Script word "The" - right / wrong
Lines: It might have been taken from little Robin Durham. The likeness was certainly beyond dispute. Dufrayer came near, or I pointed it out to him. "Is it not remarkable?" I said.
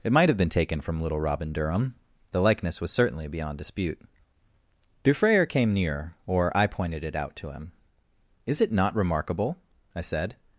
right